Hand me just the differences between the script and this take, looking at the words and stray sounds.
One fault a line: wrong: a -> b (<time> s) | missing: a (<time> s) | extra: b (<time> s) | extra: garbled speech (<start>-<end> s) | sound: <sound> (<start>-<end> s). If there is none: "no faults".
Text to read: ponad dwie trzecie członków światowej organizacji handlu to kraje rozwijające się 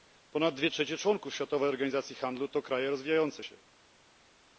no faults